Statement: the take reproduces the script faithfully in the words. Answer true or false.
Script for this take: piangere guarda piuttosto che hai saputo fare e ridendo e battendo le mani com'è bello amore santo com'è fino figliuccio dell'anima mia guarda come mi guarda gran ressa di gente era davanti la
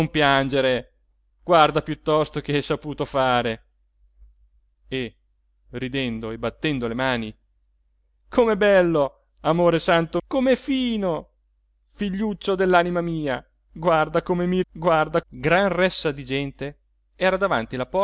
true